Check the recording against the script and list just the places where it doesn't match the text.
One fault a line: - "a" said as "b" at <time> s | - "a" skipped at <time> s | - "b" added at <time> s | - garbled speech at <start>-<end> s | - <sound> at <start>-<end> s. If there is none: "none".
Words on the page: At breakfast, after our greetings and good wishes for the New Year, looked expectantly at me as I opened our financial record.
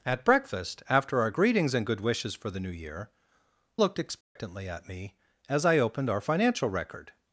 - dropout at 4.2-4.4 s